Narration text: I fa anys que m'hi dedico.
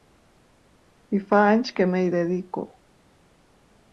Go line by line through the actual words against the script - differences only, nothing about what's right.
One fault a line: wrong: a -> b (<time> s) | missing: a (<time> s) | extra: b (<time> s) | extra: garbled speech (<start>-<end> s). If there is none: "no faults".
no faults